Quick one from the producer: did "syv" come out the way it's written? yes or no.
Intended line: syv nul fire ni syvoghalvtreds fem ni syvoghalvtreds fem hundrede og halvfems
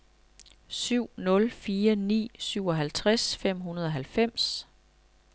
yes